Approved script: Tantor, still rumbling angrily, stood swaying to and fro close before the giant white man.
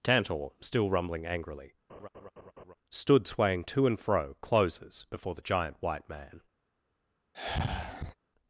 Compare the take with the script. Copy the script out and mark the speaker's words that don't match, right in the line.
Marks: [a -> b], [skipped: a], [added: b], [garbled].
Tantor, still rumbling angrily, stood swaying to and fro [close -> closes] before the giant white man.